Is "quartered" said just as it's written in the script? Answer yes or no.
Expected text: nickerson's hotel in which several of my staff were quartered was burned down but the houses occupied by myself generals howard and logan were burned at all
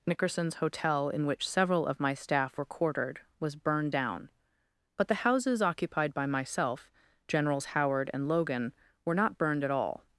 yes